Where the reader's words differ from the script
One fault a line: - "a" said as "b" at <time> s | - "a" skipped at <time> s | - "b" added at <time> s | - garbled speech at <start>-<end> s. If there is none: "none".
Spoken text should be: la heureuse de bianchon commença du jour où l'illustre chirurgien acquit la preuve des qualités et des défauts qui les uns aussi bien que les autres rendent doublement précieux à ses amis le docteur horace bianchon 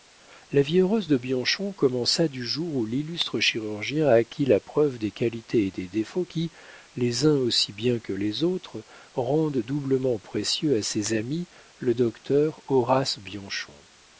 - "vie" added at 0.6 s